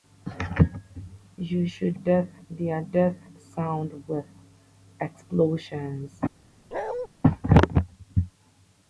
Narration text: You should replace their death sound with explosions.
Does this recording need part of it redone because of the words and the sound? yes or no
yes